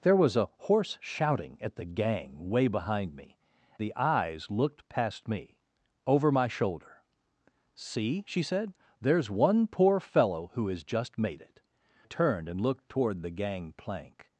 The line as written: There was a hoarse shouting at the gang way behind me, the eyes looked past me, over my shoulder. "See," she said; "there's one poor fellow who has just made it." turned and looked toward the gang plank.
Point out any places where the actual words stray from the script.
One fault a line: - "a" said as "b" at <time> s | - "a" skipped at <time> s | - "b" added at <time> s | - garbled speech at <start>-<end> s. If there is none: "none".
none